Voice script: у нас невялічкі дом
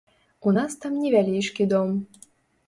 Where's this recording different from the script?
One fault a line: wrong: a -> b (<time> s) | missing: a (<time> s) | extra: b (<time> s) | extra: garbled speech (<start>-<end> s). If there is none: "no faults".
extra: там (0.8 s)